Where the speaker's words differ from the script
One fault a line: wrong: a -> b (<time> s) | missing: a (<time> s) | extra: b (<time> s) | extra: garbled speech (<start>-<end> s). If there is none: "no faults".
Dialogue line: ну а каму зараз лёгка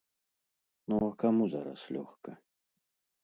no faults